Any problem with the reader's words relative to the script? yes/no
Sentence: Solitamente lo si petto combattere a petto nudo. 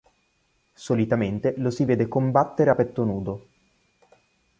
yes